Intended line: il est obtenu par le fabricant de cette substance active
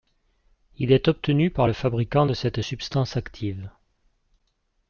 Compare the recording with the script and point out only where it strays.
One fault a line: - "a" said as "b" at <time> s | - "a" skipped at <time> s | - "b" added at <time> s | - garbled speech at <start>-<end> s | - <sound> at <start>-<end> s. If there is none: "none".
none